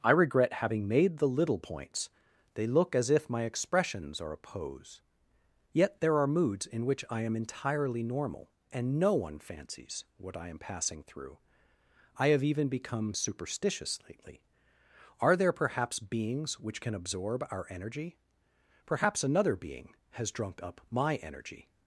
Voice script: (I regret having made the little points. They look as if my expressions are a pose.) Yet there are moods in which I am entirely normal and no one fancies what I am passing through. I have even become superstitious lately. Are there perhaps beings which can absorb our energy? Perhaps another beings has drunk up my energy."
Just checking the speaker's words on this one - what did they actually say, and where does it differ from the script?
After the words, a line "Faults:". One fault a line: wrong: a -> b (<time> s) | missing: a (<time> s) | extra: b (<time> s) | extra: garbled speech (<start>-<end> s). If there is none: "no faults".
(I regret having made the little points. They look as if my expressions are a pose.) Yet there are moods in which I am entirely normal and no one fancies what I am passing through. I have even become superstitious lately. Are there perhaps beings which can absorb our energy? Perhaps another being has drunk up my energy."
Faults:
wrong: beings -> being (19.6 s)